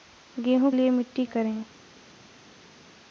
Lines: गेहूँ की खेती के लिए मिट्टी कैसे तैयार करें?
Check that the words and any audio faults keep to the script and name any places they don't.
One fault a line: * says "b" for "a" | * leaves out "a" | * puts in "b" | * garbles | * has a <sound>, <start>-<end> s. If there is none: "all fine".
* leaves out "की खेती के"
* leaves out "कैसे तैयार"